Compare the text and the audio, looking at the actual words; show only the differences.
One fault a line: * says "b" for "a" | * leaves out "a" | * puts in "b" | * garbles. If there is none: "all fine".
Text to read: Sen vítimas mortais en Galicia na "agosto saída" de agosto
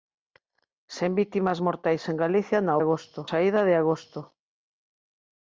all fine